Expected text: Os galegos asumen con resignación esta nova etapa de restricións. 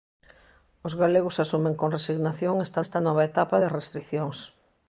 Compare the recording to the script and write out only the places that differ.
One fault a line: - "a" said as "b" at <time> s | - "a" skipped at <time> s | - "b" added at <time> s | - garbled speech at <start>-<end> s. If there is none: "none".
- "esta" added at 2.8 s